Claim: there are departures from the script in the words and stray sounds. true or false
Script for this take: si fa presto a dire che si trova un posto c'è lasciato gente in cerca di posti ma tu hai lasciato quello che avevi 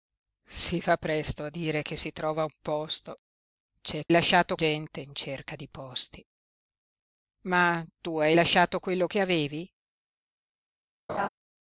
true